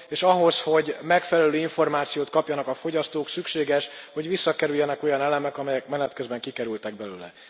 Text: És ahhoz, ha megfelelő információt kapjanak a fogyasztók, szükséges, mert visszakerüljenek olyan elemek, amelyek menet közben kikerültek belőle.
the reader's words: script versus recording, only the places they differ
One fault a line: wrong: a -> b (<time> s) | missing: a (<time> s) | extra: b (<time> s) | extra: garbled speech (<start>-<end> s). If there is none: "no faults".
wrong: ha -> hogy (0.6 s)
wrong: mert -> hogy (4.1 s)